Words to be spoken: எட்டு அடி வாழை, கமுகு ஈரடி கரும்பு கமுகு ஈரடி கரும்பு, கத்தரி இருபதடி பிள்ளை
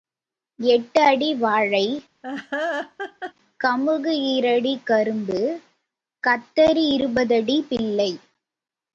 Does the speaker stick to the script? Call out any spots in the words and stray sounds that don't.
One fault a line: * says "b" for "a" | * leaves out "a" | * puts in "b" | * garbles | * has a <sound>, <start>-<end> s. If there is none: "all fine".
* has a laugh, 2.2-3.3 s
* leaves out "கமுகு ஈரடி கரும்பு"